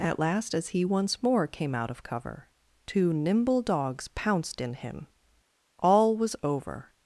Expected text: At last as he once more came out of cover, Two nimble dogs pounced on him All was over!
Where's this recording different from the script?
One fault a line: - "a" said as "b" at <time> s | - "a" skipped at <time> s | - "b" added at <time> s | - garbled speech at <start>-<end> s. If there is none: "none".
- "on" said as "in" at 4.6 s